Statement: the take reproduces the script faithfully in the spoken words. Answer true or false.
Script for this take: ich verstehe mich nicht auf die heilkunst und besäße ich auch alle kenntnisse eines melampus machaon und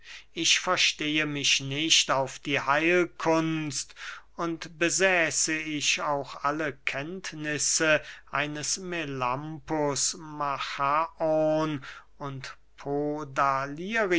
true